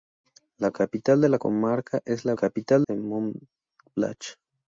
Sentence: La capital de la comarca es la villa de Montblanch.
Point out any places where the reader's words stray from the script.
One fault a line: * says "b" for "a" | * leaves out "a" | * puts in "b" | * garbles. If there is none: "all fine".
* says "capital" for "villa"